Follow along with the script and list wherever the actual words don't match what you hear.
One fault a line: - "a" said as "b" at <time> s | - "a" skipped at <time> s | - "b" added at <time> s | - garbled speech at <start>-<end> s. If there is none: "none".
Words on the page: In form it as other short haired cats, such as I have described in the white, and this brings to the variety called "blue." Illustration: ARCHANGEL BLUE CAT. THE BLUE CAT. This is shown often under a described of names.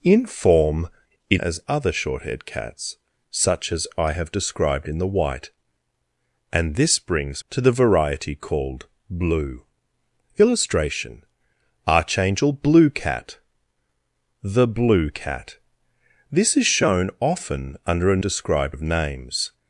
none